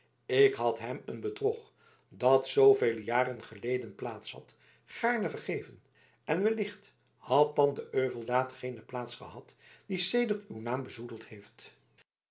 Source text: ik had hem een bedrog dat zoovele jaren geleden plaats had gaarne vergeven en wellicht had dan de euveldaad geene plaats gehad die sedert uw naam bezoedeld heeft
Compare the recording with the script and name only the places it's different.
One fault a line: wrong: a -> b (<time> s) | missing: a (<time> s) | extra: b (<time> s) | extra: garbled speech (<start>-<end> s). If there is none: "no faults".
no faults